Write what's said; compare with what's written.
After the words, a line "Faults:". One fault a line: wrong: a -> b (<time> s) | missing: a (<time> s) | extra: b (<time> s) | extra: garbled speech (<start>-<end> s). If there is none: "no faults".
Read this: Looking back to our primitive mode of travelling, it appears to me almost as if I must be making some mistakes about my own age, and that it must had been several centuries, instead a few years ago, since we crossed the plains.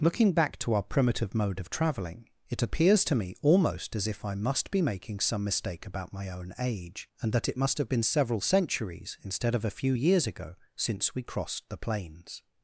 Looking back to our primitive mode of travelling, it appears to me almost as if I must be making some mistake about my own age, and that it must have been several centuries, instead of a few years ago, since we crossed the plains.
Faults:
wrong: mistakes -> mistake (5.4 s)
wrong: had -> have (7.8 s)
extra: of (9.5 s)